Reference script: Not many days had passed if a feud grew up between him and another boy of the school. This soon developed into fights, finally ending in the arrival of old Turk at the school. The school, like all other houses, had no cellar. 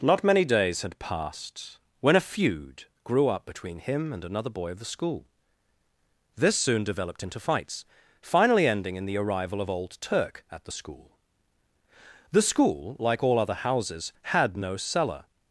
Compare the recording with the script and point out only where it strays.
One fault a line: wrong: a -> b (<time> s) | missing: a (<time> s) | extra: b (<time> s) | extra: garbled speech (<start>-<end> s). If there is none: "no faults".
wrong: if -> when (2.0 s)